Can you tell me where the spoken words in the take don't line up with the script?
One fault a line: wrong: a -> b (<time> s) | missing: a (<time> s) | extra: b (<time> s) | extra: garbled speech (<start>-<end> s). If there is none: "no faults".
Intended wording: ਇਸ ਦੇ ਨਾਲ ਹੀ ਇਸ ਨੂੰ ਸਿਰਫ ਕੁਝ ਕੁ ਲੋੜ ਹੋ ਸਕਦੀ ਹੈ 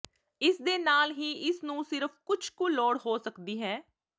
no faults